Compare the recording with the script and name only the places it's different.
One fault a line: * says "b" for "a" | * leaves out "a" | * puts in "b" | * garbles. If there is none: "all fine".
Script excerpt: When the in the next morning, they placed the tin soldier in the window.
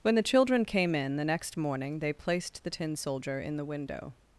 * puts in "children came"